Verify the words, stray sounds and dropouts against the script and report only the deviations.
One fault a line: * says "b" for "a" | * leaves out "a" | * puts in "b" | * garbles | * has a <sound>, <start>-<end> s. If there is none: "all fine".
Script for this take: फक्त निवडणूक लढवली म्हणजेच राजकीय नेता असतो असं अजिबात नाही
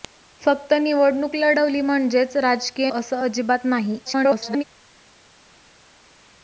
* leaves out "नेता असतो"
* garbles